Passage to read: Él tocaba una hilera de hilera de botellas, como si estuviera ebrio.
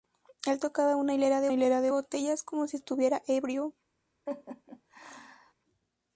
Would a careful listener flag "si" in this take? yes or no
no